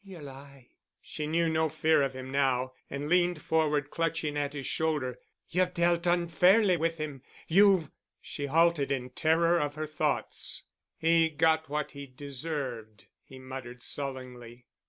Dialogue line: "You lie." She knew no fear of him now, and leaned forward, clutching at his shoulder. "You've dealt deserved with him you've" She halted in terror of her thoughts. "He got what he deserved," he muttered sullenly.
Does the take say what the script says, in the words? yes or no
no